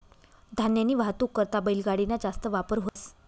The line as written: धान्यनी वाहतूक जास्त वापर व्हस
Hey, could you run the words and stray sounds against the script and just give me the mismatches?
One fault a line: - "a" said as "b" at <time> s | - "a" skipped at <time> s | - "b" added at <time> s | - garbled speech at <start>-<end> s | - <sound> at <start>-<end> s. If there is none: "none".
- "करता बैलगाडी ना" added at 1.4 s
- dropout at 2.9-3.0 s